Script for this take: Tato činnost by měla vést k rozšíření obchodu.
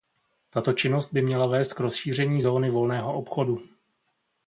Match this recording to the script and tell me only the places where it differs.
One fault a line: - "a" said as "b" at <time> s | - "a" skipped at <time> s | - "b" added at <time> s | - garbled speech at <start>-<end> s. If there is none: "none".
- "zóny volného" added at 2.4 s